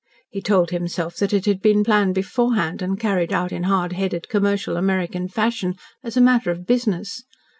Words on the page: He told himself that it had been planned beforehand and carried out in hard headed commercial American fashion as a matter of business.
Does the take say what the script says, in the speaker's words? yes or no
yes